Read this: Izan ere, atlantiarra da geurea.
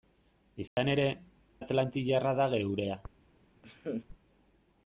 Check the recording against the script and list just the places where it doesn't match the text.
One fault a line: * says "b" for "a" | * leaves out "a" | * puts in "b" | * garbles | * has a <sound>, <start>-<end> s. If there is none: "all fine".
* has a dropout, 0.7-0.8 s
* has a laugh, 3.6-4.1 s